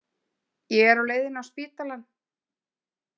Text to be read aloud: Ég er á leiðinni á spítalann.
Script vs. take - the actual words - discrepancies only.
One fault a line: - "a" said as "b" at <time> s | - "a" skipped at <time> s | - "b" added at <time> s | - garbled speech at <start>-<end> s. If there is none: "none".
none